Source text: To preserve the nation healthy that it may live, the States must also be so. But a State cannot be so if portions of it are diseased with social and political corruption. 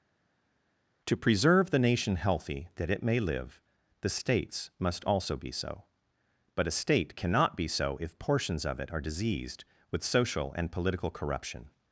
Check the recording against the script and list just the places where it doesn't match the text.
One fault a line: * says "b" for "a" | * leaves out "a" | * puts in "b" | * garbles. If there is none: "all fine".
all fine